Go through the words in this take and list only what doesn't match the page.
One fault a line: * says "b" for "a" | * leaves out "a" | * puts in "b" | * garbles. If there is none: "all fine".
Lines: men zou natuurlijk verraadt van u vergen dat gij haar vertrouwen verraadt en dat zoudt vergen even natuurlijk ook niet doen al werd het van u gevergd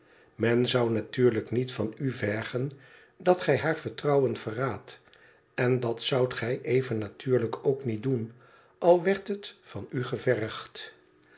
* says "niet" for "verraadt"
* says "gij" for "vergen"